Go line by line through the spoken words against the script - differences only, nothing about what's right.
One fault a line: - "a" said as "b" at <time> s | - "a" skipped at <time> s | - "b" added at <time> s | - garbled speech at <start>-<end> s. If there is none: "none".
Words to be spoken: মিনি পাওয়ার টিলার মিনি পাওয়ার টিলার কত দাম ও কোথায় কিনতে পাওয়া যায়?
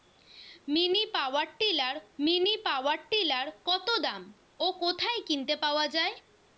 none